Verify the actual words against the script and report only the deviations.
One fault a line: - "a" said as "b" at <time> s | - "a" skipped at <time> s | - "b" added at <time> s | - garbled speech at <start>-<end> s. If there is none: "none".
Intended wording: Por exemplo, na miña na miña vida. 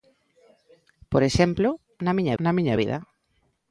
none